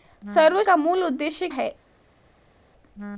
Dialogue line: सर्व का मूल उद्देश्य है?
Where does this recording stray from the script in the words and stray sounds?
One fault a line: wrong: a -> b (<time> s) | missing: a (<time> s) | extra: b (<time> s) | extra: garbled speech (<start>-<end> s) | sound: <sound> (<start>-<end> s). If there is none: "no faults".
no faults